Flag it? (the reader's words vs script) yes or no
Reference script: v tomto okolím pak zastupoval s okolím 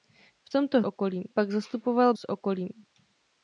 no